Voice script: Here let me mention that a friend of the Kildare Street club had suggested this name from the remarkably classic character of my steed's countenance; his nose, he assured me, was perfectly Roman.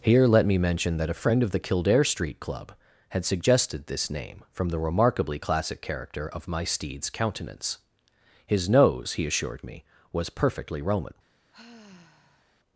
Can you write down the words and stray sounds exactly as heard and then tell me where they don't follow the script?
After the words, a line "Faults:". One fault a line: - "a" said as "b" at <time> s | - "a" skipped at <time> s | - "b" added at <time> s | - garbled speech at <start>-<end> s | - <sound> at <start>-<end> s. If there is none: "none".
Here let me mention that a friend of the Kildare Street club had suggested this name from the remarkably classic character of my steed's countenance; his nose, he assured me, was perfectly Roman.
Faults:
- sigh at 11.5-12.5 s